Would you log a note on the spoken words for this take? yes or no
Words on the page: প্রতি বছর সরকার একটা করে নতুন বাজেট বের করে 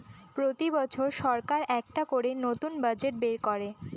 no